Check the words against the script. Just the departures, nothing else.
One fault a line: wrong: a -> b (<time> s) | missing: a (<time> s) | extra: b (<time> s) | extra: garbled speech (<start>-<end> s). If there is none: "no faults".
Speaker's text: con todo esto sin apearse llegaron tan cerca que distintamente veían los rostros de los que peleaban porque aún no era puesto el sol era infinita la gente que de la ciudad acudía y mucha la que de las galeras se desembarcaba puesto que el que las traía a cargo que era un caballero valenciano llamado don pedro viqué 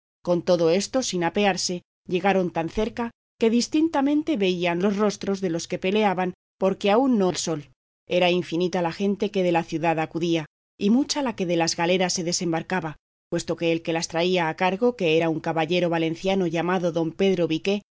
missing: era puesto (7.3 s)